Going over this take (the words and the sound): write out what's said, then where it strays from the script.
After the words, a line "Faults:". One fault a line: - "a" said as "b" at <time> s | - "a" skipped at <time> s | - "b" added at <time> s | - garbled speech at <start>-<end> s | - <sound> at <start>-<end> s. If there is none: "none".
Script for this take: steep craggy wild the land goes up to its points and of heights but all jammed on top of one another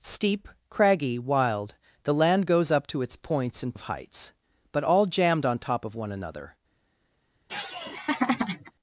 steep craggy wild the land goes up to its points and of heights but all jammed on top of one another
Faults:
- laugh at 7.5-8.7 s